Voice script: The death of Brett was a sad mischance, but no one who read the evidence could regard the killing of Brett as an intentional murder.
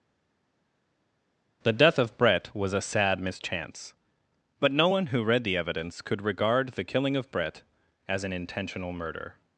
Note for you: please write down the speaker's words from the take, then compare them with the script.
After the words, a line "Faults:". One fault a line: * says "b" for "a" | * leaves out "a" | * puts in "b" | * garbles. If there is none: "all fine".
The death of Brett was a sad mischance, but no one who read the evidence could regard the killing of Brett as an intentional murder.
Faults:
all fine